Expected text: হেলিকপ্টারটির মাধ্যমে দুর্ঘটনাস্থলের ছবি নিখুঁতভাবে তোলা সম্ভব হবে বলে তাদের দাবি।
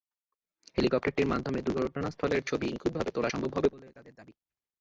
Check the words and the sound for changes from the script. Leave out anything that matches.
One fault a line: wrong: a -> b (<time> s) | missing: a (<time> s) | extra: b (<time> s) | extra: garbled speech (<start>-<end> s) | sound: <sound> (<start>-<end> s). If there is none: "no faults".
no faults